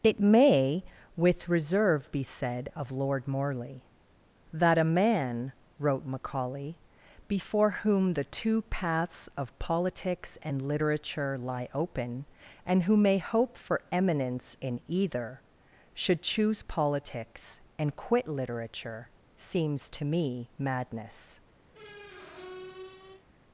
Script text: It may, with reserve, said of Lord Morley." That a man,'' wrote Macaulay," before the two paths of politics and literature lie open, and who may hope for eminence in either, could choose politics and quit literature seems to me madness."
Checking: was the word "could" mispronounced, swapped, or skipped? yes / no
yes